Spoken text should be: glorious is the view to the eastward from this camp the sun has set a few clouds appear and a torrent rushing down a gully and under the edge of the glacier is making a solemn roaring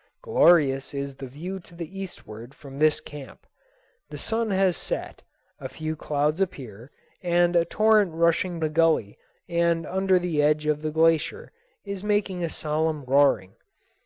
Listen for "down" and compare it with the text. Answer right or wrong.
wrong